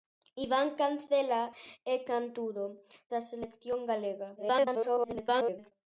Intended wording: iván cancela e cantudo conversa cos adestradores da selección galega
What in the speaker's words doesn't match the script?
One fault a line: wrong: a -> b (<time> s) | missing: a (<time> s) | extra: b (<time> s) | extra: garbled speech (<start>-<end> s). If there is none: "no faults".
missing: conversa cos adestradores (2.6 s)
extra: garbled speech (4.4-5.7 s)